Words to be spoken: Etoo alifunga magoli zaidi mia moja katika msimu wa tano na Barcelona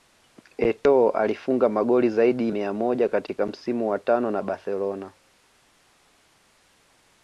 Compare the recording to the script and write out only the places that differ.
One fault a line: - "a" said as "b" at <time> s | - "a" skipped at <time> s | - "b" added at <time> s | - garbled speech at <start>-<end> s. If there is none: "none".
none